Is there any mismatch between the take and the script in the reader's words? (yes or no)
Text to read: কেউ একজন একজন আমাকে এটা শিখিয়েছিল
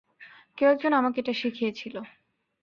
yes